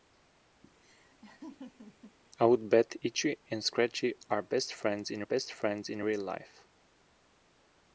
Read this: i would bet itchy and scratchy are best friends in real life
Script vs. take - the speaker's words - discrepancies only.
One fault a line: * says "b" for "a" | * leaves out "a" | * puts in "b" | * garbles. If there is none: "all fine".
* puts in "best friends in"